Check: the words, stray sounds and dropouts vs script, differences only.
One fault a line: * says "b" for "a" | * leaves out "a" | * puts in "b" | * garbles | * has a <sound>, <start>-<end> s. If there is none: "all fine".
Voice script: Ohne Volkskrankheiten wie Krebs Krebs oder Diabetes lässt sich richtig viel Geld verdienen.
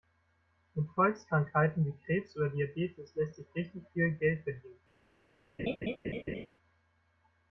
* says "Mit" for "Ohne"
* leaves out "Krebs"
* has a laugh, 5.6-6.5 s